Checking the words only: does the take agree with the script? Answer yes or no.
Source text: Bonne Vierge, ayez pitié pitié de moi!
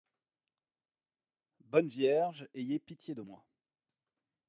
no